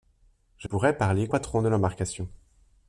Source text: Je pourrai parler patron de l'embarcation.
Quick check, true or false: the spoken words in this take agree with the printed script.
true